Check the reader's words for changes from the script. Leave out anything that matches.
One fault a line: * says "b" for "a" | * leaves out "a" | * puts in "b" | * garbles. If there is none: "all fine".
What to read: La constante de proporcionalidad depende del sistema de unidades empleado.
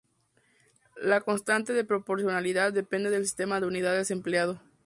all fine